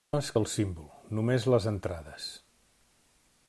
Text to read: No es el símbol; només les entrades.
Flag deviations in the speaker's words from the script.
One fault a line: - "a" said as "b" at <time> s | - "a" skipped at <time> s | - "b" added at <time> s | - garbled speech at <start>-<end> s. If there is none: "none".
none